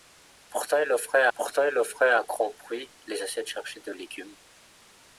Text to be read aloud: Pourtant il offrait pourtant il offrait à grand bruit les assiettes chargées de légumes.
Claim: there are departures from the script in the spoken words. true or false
false